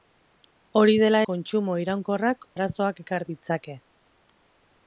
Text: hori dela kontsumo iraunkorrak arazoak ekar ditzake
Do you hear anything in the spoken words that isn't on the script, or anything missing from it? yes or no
no